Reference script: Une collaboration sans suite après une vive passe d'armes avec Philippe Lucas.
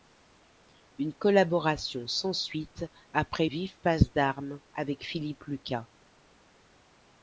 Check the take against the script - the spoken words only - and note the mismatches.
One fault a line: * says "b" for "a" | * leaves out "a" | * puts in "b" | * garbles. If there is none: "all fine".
* leaves out "une"